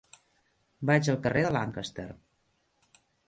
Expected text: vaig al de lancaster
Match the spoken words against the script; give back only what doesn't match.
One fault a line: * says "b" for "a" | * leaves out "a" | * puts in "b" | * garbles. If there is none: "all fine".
* puts in "carrer"